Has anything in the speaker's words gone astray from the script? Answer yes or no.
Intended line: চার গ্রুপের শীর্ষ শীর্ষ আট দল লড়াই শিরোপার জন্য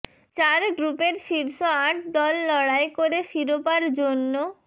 yes